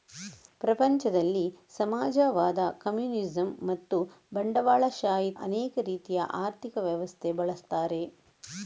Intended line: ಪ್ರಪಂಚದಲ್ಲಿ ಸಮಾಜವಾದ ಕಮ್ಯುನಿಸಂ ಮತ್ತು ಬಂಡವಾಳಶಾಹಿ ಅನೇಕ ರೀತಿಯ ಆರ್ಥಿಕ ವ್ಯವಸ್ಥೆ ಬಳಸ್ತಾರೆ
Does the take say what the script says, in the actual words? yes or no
yes